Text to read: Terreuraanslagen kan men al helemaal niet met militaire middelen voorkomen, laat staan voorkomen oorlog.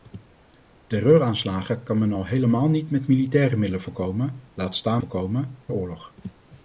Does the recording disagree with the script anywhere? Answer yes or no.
no